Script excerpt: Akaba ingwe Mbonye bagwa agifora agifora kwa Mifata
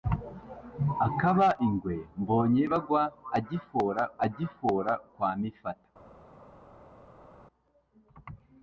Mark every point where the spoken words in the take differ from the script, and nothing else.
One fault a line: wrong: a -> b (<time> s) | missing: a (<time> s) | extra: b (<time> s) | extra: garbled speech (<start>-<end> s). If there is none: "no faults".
no faults